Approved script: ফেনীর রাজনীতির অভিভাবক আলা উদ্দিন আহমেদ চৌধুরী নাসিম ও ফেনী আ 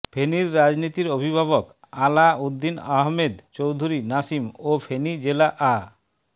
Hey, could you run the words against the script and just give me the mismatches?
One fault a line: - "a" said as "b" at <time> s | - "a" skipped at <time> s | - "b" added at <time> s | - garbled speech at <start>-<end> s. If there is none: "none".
- "জেলা" added at 5.2 s